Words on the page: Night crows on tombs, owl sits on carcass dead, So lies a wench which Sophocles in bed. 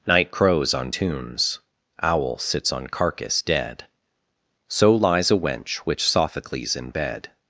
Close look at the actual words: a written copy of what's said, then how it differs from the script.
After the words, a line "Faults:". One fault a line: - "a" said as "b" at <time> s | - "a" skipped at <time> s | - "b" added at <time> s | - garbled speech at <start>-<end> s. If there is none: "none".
Night crows on tombs, owl sits on carcass dead, So lies a wench which Sophocles in bed.
Faults:
none